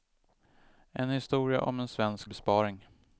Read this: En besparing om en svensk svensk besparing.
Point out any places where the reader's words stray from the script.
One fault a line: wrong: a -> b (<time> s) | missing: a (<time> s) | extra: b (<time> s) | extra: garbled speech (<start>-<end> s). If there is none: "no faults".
wrong: besparing -> historia (1.1 s)
missing: svensk (2.3 s)